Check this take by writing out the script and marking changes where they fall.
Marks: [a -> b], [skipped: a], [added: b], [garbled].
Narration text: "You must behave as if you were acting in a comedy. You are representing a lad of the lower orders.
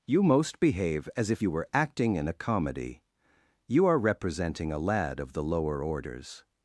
"You [must -> most] behave as if you were acting in a comedy. You are representing a lad of the lower orders.